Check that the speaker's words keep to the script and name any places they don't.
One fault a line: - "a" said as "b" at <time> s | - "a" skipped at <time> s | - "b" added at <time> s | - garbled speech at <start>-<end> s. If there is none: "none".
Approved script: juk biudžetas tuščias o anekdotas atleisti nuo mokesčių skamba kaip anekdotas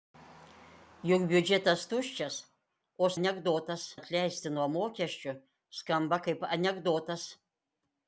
none